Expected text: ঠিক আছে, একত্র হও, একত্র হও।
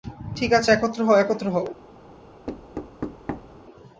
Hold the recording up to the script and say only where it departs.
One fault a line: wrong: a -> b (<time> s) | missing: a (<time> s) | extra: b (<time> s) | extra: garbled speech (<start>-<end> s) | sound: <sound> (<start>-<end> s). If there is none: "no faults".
sound: thud (2.5-3.6 s)